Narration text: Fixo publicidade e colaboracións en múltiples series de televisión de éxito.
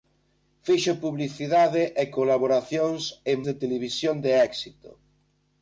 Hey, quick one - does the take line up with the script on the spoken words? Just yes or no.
no